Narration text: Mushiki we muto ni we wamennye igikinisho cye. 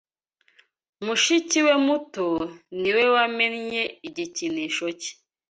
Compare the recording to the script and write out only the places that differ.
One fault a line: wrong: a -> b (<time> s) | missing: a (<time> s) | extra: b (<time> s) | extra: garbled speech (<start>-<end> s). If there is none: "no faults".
no faults